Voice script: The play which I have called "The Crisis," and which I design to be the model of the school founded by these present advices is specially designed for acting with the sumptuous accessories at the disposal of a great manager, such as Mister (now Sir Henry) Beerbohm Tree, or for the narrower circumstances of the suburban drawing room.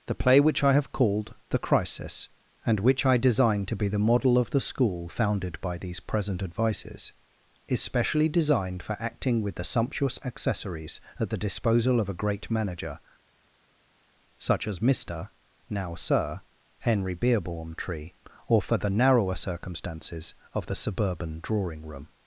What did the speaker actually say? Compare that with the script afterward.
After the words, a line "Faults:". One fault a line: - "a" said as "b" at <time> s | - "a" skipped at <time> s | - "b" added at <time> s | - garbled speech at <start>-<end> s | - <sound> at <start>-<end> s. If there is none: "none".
The play which I have called "The Crisis," and which I design to be the model of the school founded by these present advices is specially designed for acting with the sumptuous accessories at the disposal of a great manager, such as Mister (now Sir Henry) Beerbohm Tree, or for the narrower circumstances of the suburban drawing room.
Faults:
none